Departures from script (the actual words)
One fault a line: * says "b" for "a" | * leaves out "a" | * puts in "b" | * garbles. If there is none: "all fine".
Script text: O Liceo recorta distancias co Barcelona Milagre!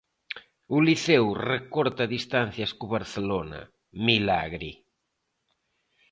all fine